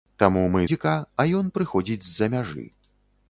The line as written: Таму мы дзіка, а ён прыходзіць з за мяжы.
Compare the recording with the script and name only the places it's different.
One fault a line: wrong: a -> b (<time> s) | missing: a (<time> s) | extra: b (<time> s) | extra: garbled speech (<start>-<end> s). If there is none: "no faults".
no faults